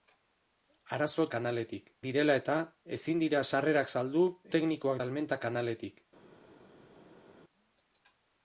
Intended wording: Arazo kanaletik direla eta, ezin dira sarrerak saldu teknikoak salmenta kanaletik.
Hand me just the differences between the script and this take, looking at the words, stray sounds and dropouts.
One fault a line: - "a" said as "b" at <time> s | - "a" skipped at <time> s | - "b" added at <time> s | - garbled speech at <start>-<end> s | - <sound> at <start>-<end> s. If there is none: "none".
none